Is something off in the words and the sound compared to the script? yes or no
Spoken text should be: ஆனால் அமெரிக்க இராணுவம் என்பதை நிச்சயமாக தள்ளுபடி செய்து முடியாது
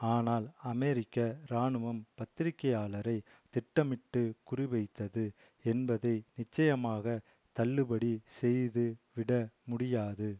yes